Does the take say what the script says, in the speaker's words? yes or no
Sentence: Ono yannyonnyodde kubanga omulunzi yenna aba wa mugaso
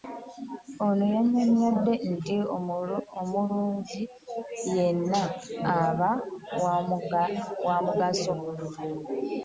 no